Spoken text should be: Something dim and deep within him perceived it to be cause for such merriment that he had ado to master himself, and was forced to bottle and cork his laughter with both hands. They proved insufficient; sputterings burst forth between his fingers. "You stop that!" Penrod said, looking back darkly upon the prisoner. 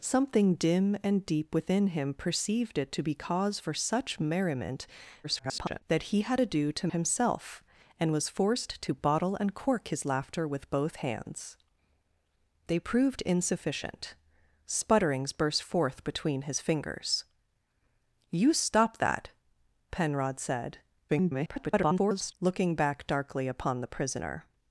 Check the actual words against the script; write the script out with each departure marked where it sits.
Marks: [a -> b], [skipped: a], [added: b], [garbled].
Something dim and deep within him perceived it to be cause for such merriment [garbled] that he had ado to [skipped: master] himself, and was forced to bottle and cork his laughter with both hands. They proved insufficient; sputterings burst forth between his fingers. "You stop that!" Penrod said, [garbled] looking back darkly upon the prisoner.